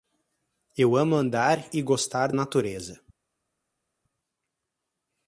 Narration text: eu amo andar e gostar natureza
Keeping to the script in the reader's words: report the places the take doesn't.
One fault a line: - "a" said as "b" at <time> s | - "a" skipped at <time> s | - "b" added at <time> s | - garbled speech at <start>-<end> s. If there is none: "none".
none